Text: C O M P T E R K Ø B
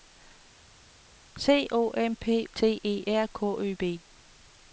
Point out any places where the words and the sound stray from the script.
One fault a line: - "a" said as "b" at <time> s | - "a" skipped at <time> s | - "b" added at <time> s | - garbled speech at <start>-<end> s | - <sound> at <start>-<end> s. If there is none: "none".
none